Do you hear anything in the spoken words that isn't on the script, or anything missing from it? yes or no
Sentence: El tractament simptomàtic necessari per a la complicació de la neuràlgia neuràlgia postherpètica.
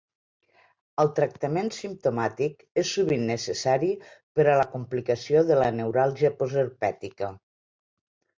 yes